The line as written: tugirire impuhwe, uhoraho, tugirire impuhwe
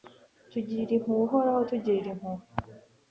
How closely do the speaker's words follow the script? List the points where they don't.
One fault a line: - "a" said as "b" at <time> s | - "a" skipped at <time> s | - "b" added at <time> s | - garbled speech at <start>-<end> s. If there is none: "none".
none